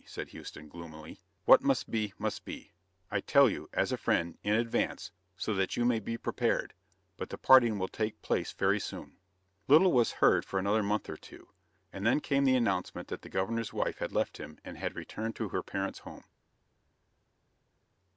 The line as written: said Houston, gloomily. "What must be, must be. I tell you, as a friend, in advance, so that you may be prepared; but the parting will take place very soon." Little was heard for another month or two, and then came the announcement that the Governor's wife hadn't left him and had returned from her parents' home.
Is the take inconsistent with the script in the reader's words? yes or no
yes